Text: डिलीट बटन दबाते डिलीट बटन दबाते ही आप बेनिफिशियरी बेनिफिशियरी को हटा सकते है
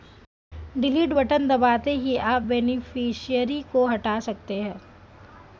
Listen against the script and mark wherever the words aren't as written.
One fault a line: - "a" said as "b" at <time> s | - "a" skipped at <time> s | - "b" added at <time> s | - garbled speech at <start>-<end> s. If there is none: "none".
- "डिलीट बटन दबाते" skipped at 1.9 s
- "बेनिफिशियरी" skipped at 3.6 s